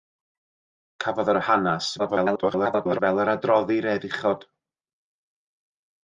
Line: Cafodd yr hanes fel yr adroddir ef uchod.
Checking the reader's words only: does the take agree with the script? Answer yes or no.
no